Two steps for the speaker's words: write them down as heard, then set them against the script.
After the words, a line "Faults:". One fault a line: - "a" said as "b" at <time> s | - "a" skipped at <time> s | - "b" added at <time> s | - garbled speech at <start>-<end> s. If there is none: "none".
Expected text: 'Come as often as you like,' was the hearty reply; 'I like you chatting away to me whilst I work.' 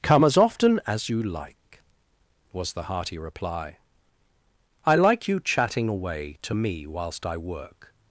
'Come as often as you like,' was the hearty reply; 'I like you chatting away to me whilst I work.'
Faults:
none